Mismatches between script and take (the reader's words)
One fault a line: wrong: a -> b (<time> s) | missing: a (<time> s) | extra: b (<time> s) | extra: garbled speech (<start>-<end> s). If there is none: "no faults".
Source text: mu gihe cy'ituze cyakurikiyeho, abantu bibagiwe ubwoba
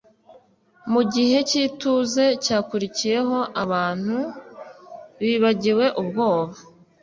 no faults